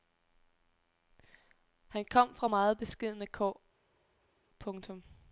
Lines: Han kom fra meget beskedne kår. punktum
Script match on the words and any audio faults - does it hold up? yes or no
yes